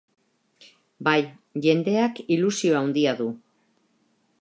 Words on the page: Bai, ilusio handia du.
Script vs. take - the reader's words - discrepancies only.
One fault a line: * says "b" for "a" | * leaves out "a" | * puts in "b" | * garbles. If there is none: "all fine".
* puts in "jendeak"